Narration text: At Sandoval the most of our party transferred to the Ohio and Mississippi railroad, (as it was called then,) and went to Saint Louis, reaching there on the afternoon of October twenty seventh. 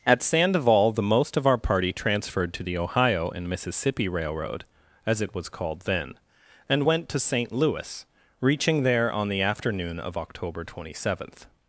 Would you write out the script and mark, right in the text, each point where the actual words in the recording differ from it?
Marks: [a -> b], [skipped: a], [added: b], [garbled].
At Sandoval the most of our party transferred to the Ohio and Mississippi railroad, (as it was called then,) and went to Saint Louis, reaching there on the afternoon of October twenty seventh.